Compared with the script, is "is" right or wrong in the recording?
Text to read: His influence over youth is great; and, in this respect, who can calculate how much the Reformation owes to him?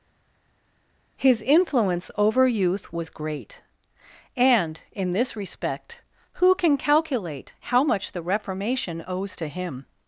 wrong